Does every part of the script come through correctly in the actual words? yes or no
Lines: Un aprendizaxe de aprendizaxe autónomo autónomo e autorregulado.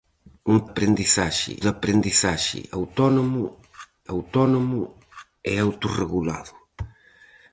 yes